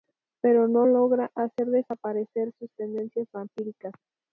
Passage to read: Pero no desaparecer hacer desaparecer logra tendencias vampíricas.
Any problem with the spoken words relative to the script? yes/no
yes